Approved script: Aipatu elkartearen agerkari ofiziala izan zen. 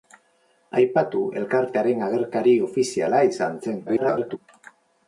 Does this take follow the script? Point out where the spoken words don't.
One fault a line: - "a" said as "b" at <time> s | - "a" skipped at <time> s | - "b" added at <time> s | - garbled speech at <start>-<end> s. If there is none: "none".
- garbled speech at 3.9-4.4 s